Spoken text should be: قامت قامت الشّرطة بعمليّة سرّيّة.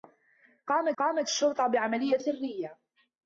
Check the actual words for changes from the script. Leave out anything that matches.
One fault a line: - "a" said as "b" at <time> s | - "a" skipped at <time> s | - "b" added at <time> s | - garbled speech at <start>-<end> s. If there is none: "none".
none